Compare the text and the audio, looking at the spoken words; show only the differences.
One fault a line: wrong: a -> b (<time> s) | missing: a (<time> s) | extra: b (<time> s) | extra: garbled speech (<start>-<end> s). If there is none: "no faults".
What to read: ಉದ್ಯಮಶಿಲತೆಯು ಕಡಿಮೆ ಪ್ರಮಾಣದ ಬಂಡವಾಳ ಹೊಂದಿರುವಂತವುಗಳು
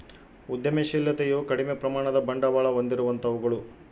no faults